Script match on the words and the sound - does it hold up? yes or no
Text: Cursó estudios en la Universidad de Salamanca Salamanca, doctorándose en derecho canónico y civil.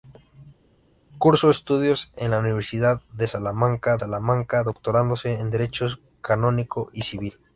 yes